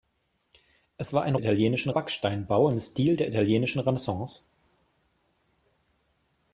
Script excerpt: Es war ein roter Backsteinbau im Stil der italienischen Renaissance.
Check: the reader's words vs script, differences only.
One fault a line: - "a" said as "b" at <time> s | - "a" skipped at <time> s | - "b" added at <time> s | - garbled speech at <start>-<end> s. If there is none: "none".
- "roter" said as "italienischen" at 1.4 s